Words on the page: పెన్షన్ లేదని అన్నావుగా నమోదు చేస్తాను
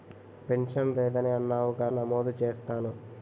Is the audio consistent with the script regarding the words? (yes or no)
yes